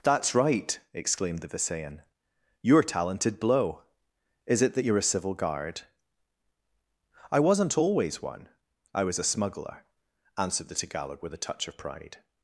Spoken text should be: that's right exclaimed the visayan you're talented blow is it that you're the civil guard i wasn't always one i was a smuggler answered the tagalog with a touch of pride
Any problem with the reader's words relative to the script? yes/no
yes